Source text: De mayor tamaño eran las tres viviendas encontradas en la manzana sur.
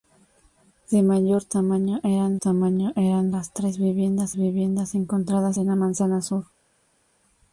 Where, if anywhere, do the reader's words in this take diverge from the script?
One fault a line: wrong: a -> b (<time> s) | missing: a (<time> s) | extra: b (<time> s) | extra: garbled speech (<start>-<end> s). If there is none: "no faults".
extra: tamaño eran (2.4 s)
extra: viviendas (4.4 s)